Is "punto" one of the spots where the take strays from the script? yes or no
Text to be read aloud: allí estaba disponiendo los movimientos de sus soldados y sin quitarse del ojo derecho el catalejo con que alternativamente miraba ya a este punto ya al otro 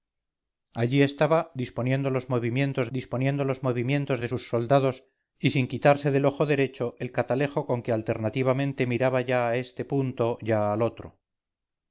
no